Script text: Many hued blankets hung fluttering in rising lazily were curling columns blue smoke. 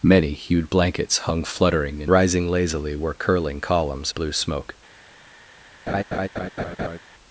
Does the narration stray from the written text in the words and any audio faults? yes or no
yes